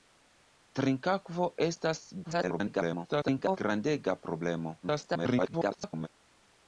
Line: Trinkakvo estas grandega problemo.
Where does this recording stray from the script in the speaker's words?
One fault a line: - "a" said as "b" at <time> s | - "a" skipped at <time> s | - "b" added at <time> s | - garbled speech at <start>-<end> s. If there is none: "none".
- garbled speech at 2.2-3.6 s
- garbled speech at 4.8-6.1 s